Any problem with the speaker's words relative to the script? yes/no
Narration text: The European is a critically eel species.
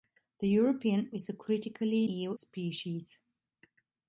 no